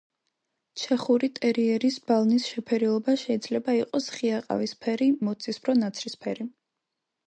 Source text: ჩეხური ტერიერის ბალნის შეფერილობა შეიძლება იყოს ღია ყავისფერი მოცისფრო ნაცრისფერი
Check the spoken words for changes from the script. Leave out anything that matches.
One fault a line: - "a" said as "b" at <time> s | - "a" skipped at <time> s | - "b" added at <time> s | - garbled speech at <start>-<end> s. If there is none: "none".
none